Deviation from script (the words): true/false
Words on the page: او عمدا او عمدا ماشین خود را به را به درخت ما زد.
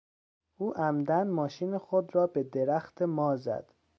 true